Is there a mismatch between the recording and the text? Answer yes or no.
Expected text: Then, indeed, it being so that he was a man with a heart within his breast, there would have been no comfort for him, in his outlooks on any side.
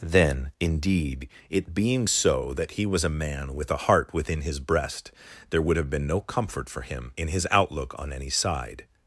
yes